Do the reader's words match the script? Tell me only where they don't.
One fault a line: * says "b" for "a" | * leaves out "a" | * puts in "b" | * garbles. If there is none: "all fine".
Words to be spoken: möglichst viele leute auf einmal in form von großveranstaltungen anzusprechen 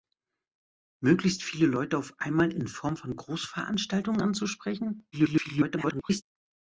* garbles